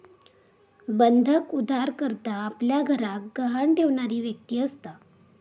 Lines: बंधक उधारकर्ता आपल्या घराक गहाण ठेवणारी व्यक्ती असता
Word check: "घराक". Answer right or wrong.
right